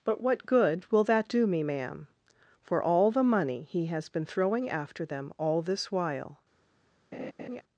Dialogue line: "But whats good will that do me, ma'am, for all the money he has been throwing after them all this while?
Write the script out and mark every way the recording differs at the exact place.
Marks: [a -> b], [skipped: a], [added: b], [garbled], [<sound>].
"But [whats -> what] good will that do me, ma'am, for all the money he has been throwing after them all this while? [laugh]